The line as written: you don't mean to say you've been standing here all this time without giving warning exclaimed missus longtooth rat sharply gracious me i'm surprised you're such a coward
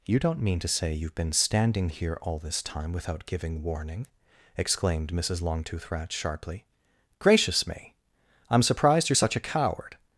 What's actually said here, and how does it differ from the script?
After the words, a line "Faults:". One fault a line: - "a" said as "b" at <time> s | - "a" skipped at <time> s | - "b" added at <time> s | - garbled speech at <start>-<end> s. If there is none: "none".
you don't mean to say you've been standing here all this time without giving warning exclaimed missus longtooth rat sharply gracious me i'm surprised you're such a coward
Faults:
none